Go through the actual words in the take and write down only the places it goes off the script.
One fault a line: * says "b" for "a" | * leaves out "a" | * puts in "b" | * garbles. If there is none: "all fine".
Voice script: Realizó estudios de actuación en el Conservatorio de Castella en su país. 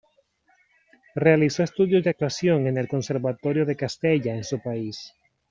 all fine